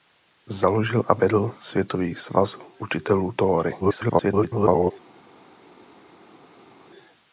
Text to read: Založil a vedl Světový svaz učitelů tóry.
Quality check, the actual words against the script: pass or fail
fail